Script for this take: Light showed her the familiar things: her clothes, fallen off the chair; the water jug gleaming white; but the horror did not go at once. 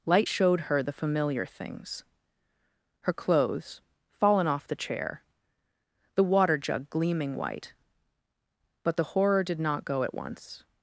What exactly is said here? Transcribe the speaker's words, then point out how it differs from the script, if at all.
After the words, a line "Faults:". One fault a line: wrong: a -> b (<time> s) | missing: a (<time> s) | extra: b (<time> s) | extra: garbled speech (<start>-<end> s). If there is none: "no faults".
Light showed her the familiar things: her clothes, fallen off the chair; the water jug gleaming white; but the horror did not go at once.
Faults:
no faults